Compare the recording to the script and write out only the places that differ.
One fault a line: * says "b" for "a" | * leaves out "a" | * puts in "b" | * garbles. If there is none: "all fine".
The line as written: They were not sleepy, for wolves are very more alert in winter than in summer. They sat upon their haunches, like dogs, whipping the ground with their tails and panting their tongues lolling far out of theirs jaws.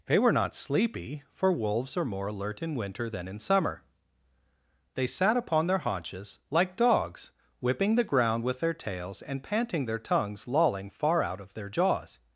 * leaves out "very"
* says "their" for "theirs"